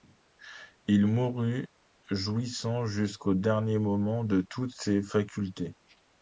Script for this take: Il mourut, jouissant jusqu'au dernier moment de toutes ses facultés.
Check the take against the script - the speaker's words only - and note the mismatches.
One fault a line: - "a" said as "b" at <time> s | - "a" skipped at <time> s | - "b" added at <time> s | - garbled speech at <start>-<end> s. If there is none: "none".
none